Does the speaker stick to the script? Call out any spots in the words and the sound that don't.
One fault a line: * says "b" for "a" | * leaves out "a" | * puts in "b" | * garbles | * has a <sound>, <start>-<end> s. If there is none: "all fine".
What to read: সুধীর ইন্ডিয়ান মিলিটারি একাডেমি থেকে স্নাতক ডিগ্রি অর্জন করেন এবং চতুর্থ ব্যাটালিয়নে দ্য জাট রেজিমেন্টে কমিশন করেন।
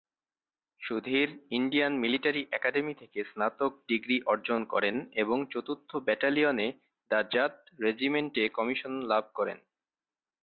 * puts in "লাভ"